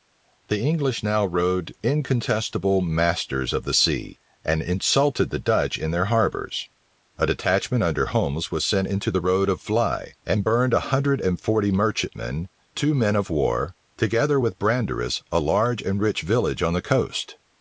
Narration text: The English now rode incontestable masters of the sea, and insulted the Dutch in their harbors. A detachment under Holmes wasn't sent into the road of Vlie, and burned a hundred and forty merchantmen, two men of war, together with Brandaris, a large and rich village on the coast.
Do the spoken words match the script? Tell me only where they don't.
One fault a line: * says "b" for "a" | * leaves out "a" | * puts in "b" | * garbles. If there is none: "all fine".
* says "was" for "wasn't"